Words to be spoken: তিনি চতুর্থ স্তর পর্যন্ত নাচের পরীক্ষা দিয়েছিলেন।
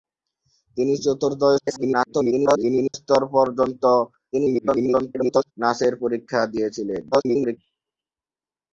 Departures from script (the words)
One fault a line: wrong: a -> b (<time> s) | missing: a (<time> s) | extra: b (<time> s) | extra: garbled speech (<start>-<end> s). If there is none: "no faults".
extra: garbled speech (1.6-2.9 s)
extra: garbled speech (4.3-5.5 s)
extra: garbled speech (7.1-7.6 s)